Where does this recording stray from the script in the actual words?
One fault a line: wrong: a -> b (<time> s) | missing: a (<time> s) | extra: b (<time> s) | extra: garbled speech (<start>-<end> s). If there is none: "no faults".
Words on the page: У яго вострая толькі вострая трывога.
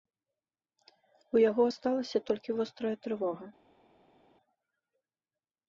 wrong: вострая -> асталася (1.7 s)